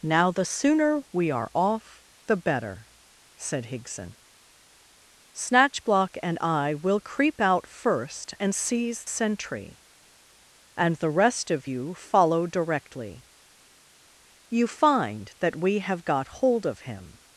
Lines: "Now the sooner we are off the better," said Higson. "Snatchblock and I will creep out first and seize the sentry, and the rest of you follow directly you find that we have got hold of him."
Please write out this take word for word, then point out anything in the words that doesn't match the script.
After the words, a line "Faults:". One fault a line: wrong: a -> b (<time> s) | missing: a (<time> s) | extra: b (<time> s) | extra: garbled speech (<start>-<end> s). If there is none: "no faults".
"Now the sooner we are off the better," said Higson. "Snatchblock and I will creep out first and seize sentry, and the rest of you follow directly you find that we have got hold of him."
Faults:
missing: the (9.1 s)